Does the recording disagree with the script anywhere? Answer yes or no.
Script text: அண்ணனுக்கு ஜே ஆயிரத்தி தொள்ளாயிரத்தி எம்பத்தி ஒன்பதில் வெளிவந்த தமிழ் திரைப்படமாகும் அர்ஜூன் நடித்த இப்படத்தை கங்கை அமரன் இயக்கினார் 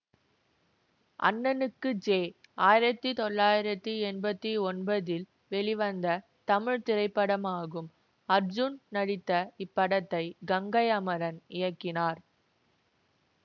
no